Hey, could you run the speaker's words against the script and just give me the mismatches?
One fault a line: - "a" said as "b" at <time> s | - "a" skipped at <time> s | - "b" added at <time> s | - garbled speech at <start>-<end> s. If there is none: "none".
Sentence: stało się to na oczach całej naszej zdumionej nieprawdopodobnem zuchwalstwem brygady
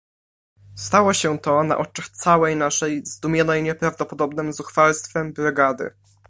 none